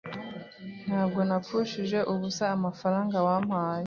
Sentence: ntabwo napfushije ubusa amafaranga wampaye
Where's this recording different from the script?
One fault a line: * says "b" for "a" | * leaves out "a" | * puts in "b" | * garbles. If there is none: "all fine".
all fine